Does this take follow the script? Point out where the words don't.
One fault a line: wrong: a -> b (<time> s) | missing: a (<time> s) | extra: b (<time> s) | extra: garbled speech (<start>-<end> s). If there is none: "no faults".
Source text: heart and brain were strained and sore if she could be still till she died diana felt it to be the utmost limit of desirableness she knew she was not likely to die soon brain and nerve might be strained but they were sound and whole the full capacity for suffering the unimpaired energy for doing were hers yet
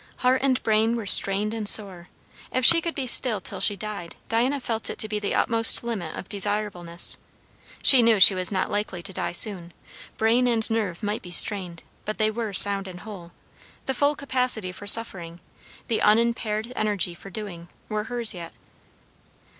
no faults